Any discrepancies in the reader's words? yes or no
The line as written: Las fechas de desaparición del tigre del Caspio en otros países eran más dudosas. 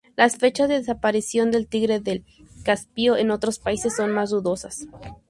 yes